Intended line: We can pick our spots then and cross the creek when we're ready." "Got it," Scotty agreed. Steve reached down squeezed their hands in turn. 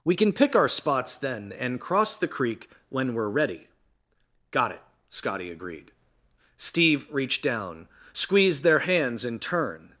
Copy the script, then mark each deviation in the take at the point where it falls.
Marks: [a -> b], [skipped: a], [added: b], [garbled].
We can pick our spots then and cross the creek when we're ready." "Got it," Scotty agreed. Steve reached down squeezed their hands in turn.